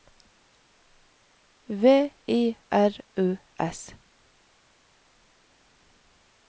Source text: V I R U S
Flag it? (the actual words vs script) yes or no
no